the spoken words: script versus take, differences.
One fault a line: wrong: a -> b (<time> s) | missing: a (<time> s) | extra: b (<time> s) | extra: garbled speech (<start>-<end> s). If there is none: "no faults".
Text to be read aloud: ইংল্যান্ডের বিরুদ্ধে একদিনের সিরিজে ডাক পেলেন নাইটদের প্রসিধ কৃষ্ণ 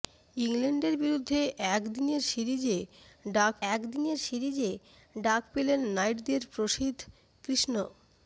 extra: একদিনের সিরিজে ডাক (3.7 s)